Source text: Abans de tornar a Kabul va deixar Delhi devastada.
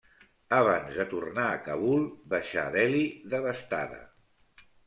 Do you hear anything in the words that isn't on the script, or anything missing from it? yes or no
yes